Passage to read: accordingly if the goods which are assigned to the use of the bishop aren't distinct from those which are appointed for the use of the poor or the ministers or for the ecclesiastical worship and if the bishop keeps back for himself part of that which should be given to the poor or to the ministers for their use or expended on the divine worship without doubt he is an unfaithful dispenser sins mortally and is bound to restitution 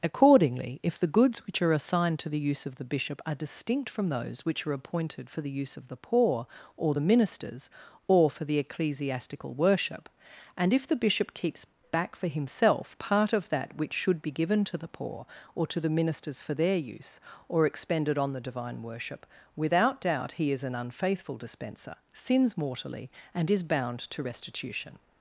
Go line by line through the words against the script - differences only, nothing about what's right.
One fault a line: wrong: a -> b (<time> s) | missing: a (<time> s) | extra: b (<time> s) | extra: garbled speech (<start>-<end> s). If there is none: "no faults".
wrong: aren't -> are (3.2 s)